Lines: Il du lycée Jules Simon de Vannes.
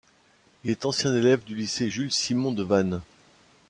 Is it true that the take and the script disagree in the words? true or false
true